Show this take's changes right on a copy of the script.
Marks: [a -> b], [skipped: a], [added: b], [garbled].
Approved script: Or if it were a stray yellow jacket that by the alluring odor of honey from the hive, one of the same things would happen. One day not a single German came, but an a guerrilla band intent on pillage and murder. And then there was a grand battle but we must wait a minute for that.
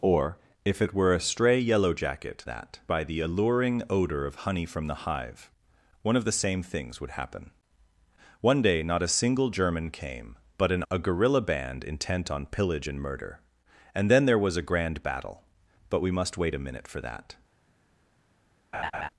Or if it were a stray yellow jacket that by the alluring odor of honey from the hive, one of the same things would happen. One day not a single German came, but an a guerrilla band intent on pillage and murder. And then there was a grand battle but we must wait a minute for that.